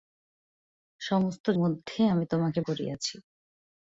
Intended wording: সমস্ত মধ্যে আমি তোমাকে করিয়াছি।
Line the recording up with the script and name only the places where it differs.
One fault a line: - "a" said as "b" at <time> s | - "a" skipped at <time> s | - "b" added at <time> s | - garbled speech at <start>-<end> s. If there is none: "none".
none